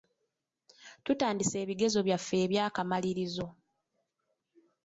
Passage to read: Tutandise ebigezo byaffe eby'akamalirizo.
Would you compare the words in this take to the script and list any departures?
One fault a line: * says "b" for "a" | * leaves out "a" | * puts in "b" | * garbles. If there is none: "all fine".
all fine